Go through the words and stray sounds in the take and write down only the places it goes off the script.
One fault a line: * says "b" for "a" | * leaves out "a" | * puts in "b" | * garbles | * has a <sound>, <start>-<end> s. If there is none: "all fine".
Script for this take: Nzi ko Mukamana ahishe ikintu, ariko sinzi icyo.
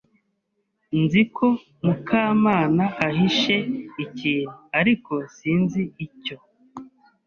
all fine